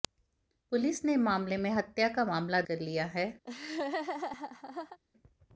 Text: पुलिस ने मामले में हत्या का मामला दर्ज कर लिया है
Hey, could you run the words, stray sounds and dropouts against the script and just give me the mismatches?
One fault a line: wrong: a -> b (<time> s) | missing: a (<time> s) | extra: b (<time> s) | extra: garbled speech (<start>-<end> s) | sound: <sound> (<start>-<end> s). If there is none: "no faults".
missing: दर्ज (2.6 s)
sound: laugh (3.4-5.0 s)